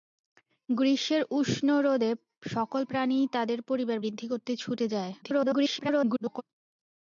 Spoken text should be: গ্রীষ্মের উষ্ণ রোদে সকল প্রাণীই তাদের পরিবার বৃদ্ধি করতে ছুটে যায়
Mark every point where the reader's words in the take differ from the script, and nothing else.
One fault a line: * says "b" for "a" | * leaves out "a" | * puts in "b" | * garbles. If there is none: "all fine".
* garbles